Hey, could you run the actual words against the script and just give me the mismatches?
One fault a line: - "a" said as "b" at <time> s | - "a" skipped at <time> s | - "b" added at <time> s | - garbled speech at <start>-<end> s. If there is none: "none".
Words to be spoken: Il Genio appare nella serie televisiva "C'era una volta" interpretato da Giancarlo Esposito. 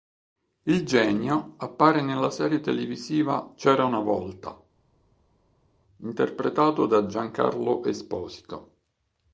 none